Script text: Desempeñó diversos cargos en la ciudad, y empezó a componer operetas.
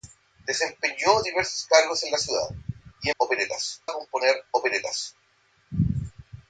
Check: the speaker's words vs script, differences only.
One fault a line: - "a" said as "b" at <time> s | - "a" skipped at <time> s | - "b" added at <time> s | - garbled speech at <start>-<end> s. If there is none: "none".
- "empezó" said as "operetas" at 3.1 s